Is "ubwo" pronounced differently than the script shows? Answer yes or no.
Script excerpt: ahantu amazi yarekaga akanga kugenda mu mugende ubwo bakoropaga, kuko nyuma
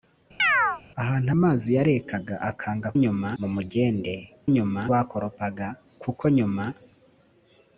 yes